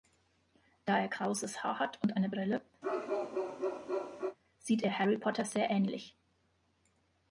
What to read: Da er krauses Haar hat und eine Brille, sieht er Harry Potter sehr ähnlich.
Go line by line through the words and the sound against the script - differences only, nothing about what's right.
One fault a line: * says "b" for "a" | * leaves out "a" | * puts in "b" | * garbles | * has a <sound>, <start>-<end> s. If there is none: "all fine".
* has a bark, 2.8-4.4 s